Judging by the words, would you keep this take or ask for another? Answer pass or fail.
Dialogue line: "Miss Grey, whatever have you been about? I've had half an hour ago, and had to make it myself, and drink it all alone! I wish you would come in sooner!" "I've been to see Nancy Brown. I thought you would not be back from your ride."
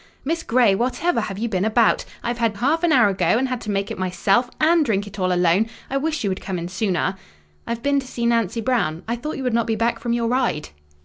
pass